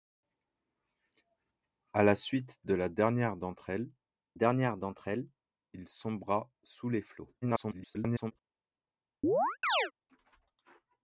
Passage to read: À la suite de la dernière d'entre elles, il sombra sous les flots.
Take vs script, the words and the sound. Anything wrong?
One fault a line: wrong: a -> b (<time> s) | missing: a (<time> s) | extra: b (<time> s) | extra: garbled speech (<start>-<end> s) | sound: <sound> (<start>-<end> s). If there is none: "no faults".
extra: dernière d'entre elles (4.3 s)
extra: garbled speech (7.4-8.3 s)
sound: chirp (9.2-9.9 s)